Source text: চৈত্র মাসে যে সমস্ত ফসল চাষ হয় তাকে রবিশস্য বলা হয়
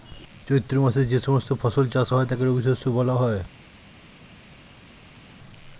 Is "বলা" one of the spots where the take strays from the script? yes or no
no